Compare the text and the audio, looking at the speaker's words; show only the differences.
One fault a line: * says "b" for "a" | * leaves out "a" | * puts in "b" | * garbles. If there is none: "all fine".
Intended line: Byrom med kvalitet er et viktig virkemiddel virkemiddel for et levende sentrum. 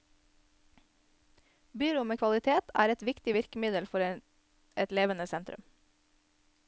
* leaves out "virkemiddel"